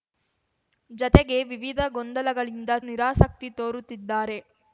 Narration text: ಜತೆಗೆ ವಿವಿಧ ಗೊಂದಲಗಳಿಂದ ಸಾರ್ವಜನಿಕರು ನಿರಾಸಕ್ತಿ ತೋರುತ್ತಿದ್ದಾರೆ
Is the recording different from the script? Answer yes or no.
yes